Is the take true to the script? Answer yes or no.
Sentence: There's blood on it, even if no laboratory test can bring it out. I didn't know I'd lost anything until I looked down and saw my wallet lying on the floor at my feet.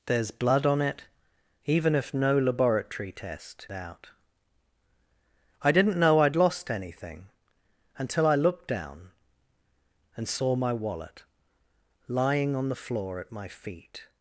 no